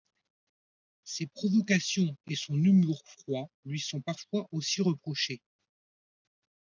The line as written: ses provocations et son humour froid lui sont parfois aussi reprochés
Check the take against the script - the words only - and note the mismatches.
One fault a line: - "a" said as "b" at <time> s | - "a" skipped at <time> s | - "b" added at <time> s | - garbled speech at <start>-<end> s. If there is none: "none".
none